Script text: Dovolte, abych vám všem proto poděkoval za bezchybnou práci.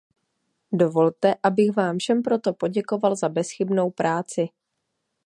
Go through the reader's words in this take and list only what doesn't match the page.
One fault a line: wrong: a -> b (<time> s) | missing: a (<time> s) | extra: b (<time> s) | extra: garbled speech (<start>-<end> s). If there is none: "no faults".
no faults